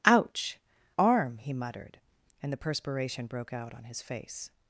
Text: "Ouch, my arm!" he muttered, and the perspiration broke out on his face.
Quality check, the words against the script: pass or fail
fail